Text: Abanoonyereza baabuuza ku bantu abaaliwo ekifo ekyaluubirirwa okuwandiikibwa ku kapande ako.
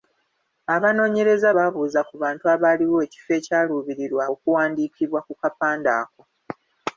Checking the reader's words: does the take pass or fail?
pass